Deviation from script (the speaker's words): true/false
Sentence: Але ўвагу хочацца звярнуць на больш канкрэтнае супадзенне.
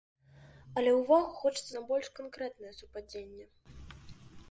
true